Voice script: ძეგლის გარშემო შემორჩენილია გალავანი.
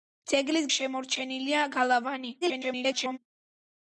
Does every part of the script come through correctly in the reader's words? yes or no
no